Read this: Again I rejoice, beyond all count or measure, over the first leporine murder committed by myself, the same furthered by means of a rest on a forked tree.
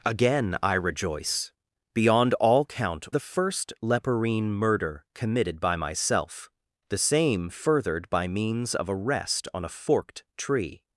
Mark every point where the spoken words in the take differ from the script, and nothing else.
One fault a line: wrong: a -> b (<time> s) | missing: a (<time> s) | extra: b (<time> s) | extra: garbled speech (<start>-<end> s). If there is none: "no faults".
missing: or measure over (3.1 s)